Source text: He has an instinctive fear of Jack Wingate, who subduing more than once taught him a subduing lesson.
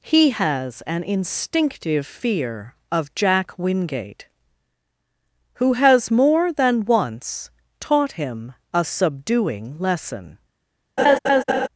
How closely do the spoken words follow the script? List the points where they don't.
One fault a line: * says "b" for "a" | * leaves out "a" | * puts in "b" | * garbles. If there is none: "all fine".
* says "has" for "subduing"